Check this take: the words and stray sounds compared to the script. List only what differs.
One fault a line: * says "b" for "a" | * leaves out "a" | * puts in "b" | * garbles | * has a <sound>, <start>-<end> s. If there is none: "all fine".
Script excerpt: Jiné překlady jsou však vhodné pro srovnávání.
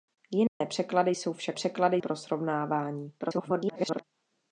* has a dropout, 0.5-0.6 s
* says "překlady" for "vhodné"
* garbles